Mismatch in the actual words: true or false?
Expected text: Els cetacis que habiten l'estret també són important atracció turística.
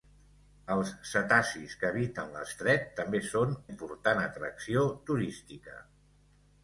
false